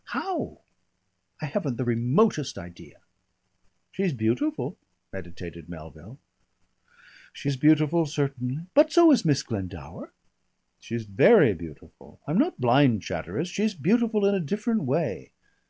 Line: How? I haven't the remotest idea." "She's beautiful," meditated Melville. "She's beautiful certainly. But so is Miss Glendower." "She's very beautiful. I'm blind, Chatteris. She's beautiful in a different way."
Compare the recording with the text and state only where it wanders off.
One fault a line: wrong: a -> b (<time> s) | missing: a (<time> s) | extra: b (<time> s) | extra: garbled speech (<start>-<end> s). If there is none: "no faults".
extra: not (12.4 s)